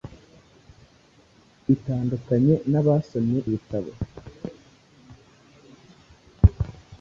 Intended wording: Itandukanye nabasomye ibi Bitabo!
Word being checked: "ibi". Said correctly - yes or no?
no